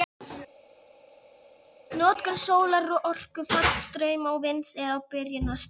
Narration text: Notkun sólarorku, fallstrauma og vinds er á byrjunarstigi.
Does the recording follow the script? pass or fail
pass